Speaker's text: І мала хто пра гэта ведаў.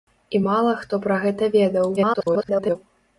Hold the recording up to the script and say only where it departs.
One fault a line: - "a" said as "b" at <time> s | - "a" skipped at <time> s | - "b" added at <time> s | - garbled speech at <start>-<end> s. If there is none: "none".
- garbled speech at 2.0-2.8 s